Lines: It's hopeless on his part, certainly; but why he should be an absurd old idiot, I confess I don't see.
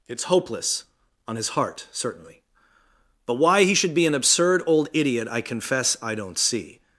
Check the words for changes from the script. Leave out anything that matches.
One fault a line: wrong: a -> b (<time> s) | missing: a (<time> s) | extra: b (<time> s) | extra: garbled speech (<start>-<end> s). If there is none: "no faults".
wrong: part -> heart (1.5 s)